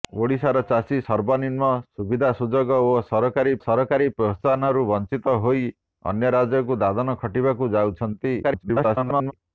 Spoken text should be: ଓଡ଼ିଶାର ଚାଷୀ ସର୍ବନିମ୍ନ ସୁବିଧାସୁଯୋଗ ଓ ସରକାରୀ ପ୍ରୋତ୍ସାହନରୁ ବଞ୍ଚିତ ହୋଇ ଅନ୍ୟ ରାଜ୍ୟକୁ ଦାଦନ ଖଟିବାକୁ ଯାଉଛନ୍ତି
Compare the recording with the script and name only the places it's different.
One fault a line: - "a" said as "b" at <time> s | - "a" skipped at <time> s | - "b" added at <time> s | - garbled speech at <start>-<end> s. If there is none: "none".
- "ସରକାରୀ" added at 3.6 s
- garbled speech at 8.4-9.3 s